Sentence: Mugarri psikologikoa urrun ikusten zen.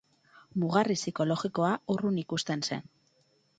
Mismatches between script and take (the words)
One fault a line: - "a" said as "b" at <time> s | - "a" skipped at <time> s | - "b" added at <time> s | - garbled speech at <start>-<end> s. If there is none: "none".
none